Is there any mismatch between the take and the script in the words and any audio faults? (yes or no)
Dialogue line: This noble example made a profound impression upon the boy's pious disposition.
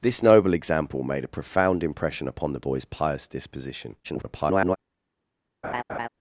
yes